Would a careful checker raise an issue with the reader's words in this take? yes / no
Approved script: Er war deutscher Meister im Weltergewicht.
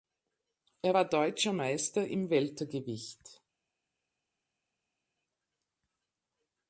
no